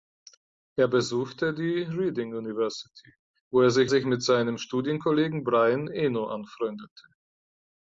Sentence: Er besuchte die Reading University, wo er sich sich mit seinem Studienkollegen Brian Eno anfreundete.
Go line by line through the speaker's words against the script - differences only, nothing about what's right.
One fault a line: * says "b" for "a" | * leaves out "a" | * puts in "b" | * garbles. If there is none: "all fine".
all fine